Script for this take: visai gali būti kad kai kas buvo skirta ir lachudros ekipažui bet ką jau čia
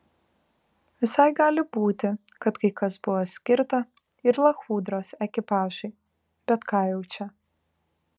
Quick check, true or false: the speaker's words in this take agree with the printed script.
true